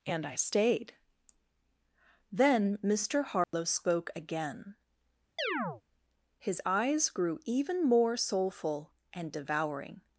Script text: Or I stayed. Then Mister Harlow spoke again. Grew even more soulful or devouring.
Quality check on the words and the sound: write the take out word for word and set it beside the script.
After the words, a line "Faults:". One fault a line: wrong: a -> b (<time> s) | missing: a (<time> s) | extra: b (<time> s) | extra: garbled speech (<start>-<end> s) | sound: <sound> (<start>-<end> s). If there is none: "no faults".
And I stayed. Then Mister Harlow spoke again. His eyes grew even more soulful and devouring.
Faults:
wrong: Or -> And (0.1 s)
sound: dropout (3.4-3.5 s)
sound: chirp (5.4-5.8 s)
extra: His eyes (6.4 s)
wrong: or -> and (9.1 s)